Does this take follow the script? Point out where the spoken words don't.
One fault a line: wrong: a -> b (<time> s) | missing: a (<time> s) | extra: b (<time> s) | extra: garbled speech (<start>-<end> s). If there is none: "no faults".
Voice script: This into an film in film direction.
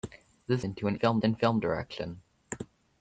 no faults